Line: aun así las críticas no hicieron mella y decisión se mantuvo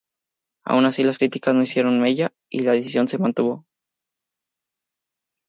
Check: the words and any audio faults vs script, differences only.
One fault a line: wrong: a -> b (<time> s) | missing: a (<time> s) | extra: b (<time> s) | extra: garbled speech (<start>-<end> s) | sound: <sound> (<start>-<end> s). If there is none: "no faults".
extra: la (2.6 s)